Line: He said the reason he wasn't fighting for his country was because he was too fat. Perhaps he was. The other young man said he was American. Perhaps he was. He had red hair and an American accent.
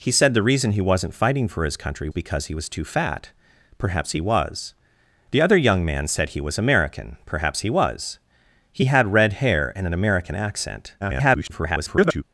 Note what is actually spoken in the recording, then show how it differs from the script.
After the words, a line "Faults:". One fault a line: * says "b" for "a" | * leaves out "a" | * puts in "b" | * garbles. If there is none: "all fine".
He said the reason he wasn't fighting for his country because he was too fat. Perhaps he was. The other young man said he was American. Perhaps he was. He had red hair and an American accent. [garbled]
Faults:
* leaves out "was"
* garbles